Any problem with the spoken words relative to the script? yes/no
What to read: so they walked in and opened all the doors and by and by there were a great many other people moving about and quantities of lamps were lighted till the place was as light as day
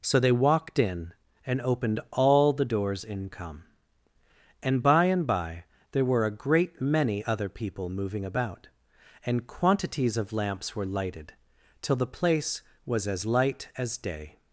yes